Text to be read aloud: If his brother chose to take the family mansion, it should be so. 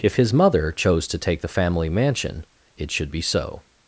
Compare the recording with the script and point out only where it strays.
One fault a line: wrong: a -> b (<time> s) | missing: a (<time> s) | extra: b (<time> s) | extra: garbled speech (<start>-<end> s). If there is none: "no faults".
wrong: brother -> mother (0.3 s)